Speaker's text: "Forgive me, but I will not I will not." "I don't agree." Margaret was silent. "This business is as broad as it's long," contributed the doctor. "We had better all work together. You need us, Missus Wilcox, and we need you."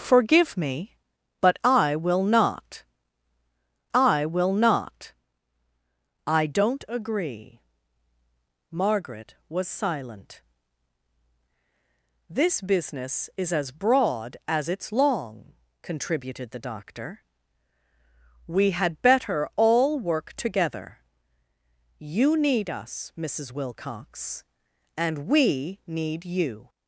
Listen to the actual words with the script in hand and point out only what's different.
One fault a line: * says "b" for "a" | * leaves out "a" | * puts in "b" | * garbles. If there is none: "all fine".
all fine